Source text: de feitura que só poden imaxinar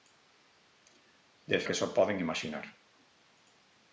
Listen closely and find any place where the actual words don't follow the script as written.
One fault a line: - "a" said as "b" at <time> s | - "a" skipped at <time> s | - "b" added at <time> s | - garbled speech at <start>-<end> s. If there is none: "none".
- "feitura" skipped at 1.6 s